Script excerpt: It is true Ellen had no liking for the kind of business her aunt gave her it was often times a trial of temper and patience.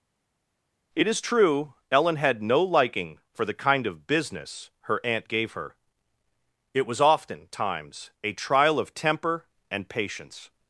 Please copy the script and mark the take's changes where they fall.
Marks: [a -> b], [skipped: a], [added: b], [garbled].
It is true Ellen had no liking for the kind of business her aunt gave her it was often times a trial of temper and patience.